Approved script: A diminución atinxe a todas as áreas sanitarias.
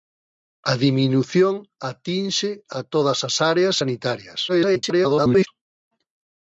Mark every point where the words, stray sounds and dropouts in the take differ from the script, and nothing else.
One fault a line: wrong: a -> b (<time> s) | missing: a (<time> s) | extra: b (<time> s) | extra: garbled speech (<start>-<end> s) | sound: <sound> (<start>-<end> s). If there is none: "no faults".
extra: garbled speech (4.5-5.5 s)